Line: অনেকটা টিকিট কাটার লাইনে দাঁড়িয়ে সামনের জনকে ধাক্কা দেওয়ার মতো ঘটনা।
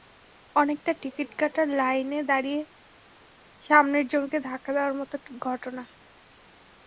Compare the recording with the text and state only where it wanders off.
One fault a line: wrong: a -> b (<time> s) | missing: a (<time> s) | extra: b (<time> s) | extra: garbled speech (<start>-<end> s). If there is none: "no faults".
no faults